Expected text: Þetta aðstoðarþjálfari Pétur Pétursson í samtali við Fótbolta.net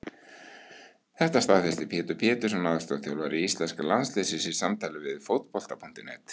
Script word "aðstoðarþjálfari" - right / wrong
wrong